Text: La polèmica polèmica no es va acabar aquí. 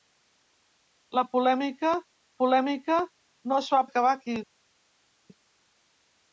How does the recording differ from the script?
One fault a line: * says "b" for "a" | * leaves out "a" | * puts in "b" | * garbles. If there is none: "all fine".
all fine